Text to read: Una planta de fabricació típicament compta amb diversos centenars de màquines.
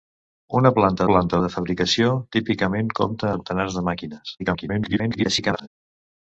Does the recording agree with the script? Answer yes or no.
no